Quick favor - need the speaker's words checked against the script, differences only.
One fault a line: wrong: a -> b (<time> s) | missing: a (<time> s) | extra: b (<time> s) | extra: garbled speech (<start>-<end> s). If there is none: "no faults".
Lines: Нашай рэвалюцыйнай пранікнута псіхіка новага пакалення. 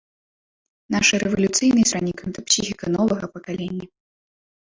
no faults